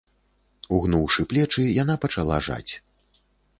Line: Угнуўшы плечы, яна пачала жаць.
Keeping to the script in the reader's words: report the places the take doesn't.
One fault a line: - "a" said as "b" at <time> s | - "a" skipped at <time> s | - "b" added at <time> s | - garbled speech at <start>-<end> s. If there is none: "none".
none